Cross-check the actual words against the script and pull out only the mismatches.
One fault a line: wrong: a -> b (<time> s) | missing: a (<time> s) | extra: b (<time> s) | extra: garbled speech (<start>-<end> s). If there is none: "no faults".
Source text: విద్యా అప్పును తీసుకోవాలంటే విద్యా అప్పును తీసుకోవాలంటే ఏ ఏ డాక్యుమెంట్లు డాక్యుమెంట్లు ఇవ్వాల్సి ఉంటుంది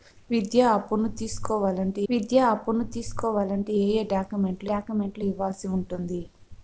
no faults